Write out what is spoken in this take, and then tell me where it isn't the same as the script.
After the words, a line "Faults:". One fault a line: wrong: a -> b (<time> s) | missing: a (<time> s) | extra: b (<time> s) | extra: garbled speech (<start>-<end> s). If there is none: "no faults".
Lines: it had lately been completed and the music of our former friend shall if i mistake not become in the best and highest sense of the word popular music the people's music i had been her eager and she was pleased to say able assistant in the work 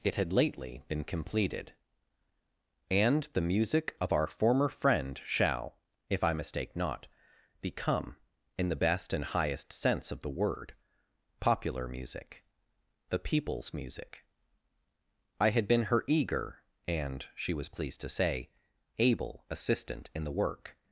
it had lately been completed and the music of our former friend shall if i mistake not become in the best and highest sense of the word popular music the people's music i had been her eager and she was pleased to say able assistant in the work
Faults:
no faults